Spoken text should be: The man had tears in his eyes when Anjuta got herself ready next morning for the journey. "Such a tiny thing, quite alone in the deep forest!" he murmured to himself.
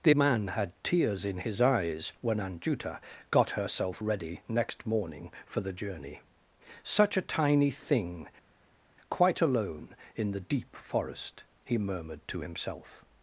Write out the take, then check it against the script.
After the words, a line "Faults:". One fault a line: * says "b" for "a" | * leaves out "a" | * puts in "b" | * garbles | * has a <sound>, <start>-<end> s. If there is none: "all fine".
The man had tears in his eyes when Anjuta got herself ready next morning for the journey. "Such a tiny thing, quite alone in the deep forest!" he murmured to himself.
Faults:
all fine